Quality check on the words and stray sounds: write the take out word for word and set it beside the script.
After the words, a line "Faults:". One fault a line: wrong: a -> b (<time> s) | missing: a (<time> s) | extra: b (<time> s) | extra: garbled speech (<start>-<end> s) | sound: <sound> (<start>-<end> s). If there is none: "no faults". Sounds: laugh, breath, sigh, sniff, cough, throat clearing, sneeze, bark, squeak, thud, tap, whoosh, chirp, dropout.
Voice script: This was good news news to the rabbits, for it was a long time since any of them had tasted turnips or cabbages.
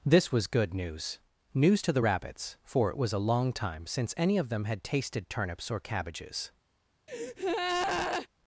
This was good news news to the rabbits, for it was a long time since any of them had tasted turnips or cabbages.
Faults:
sound: breath (7.1-8.3 s)